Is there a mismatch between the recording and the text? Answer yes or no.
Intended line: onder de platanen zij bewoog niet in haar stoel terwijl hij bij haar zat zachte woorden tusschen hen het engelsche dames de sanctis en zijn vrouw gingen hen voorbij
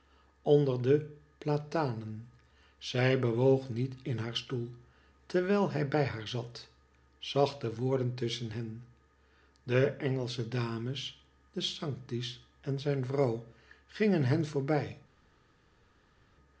yes